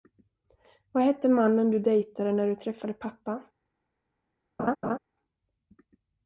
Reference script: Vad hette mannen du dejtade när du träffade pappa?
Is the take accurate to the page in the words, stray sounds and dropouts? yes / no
no